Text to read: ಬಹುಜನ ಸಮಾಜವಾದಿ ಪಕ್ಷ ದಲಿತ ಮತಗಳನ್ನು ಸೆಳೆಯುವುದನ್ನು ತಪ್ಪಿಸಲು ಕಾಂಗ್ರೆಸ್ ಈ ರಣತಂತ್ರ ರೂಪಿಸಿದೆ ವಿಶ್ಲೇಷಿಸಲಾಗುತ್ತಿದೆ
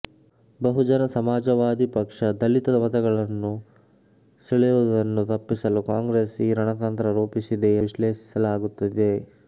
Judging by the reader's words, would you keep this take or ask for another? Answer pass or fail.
pass